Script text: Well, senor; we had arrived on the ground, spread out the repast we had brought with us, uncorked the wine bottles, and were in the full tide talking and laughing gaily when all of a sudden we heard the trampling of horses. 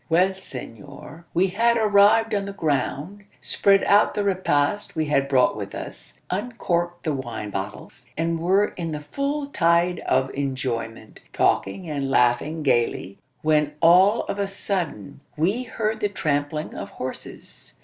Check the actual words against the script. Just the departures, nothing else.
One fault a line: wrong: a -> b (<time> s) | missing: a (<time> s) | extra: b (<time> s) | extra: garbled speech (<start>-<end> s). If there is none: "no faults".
extra: of enjoyment (10.1 s)